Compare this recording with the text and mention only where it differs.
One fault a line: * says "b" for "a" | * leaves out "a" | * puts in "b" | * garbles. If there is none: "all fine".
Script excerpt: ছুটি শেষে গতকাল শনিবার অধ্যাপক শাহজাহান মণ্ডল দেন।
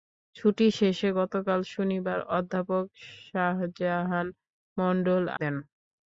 all fine